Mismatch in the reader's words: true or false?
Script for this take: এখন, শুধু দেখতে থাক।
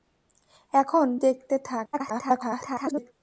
true